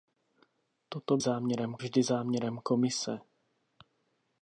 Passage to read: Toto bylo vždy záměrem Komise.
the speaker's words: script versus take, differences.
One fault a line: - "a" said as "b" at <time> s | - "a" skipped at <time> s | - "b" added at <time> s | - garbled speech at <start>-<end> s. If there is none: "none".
- "bylo" said as "záměrem" at 1.2 s